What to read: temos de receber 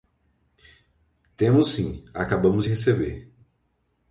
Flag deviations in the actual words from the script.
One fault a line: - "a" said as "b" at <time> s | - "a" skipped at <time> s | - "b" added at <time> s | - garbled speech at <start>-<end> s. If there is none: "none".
- "sim acabamos" added at 1.7 s